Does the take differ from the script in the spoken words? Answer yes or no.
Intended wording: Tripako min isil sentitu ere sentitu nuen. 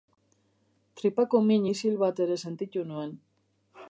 yes